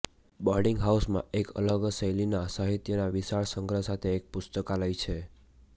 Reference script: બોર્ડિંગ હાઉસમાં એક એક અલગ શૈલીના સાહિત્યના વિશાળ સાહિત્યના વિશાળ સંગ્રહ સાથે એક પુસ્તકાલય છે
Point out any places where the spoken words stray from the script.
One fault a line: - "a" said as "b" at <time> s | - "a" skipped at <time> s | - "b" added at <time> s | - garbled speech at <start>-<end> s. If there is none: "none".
- "એક" skipped at 1.5 s
- "સાહિત્યના વિશાળ" skipped at 3.5 s